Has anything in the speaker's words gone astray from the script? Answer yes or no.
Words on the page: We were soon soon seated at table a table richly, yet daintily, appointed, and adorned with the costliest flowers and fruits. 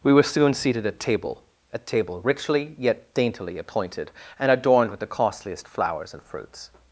yes